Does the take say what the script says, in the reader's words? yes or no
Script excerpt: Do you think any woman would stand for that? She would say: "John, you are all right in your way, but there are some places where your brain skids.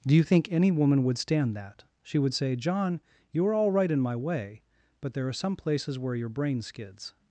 no